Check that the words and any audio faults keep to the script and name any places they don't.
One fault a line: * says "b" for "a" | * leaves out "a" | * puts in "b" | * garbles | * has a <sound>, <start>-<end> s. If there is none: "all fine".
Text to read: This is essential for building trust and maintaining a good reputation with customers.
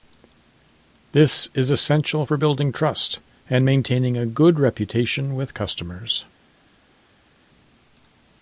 all fine